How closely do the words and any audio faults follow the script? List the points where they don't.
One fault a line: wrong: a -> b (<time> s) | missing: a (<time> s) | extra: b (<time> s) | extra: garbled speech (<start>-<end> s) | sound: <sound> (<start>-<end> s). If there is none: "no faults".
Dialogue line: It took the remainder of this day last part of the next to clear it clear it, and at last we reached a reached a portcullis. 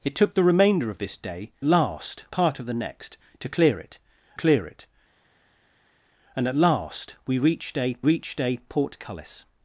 no faults